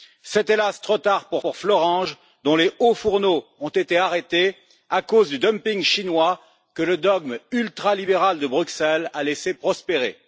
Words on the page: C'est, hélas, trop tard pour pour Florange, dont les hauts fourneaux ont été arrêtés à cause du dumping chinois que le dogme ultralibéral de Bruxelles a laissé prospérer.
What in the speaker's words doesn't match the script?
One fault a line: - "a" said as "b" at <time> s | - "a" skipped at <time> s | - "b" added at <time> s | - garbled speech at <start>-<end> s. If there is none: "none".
none